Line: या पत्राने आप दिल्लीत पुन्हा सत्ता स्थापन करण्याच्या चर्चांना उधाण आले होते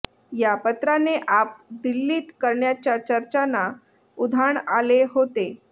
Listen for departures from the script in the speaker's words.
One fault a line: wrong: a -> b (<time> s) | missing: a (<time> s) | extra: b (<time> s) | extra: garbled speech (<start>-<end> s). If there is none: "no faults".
missing: पुन्हा सत्ता स्थापन (2.3 s)